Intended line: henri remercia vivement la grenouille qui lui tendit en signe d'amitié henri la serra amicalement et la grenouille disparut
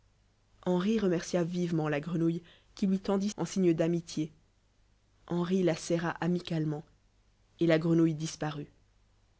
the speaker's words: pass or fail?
pass